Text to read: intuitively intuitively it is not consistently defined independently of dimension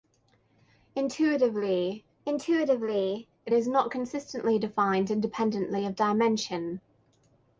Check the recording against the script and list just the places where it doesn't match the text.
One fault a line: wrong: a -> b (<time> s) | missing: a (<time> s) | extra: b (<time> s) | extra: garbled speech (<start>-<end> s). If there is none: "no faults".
no faults